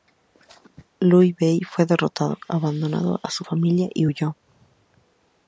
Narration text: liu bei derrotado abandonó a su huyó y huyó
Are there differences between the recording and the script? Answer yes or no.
yes